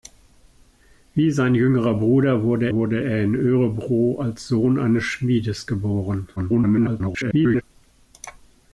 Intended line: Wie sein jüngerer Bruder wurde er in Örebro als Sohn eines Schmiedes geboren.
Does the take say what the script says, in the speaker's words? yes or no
no